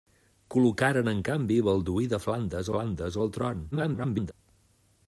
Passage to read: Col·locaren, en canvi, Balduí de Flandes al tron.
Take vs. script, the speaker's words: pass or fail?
fail